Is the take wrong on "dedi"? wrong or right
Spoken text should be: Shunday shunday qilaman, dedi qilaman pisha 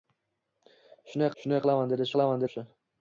right